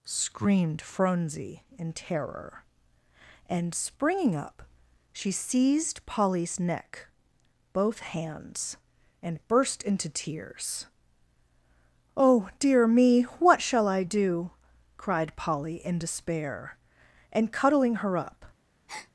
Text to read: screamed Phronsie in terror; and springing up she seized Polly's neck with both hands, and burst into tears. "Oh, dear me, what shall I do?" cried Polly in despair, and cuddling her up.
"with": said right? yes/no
no